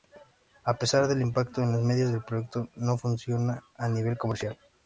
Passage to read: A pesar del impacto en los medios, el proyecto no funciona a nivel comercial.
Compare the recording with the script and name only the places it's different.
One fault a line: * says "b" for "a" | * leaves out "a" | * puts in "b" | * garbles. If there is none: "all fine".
all fine